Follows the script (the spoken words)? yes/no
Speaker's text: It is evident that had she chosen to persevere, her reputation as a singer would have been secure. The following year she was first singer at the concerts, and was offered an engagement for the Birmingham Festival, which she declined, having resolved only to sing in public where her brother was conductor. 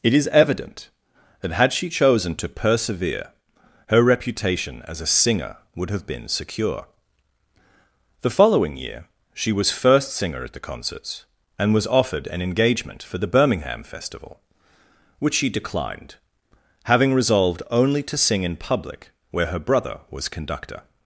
yes